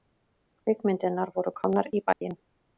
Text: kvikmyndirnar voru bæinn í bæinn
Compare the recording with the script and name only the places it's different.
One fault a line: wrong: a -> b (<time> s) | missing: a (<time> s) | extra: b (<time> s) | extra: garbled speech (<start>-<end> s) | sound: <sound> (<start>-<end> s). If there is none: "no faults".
wrong: bæinn -> komnar (1.6 s)
sound: dropout (2.1-2.2 s)